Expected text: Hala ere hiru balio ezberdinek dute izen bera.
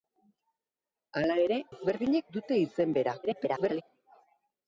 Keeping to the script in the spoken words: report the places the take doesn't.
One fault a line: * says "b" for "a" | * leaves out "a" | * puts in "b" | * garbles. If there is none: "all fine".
* leaves out "hiru balio"
* garbles